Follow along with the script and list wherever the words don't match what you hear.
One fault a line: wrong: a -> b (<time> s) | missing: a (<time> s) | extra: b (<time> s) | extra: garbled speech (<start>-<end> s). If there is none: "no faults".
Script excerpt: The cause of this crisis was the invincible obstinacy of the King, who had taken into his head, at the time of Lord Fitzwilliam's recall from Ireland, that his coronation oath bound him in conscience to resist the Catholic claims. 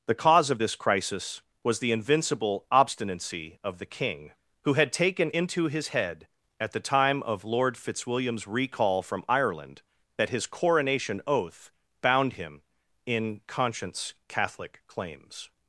missing: to resist the (14.1 s)